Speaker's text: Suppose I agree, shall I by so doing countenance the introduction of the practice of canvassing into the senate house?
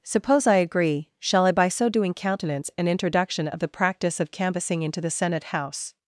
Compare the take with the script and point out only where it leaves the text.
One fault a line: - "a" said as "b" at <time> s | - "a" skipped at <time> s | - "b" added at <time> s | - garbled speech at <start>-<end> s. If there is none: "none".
- "the" said as "an" at 2.8 s